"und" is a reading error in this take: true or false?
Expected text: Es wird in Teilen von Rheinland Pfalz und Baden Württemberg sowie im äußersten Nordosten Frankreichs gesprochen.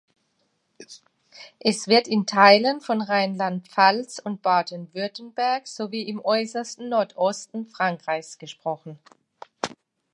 false